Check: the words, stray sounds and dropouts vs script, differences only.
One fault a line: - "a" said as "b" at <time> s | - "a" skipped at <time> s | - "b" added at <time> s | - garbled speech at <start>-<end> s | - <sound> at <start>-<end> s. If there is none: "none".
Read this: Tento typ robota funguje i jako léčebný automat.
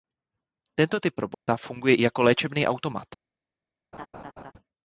- dropout at 1.3-1.5 s
- laugh at 3.9-4.5 s